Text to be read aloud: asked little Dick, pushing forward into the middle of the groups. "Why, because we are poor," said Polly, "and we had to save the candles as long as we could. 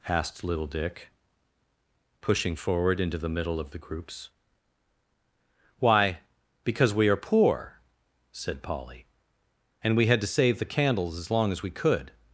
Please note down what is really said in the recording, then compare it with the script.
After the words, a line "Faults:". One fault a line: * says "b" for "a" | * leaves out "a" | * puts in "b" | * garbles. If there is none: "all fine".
asked little Dick, pushing forward into the middle of the groups. "Why, because we are poor," said Polly, "and we had to save the candles as long as we could.
Faults:
all fine